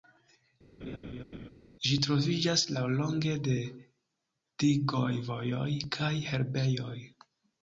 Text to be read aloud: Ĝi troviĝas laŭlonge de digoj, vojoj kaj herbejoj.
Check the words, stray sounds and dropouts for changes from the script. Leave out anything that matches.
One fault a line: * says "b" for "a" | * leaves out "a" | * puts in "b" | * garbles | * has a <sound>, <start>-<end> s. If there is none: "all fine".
* has a laugh, 0.8-1.5 s